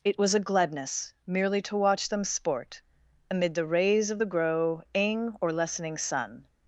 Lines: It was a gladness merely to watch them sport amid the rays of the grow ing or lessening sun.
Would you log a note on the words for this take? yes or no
no